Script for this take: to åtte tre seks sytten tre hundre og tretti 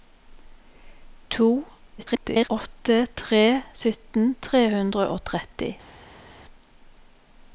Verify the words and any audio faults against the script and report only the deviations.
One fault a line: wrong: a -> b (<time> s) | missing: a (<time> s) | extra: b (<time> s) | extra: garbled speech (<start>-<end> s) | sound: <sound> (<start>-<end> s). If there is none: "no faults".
extra: garbled speech (2.0-2.5 s)
missing: seks (3.4 s)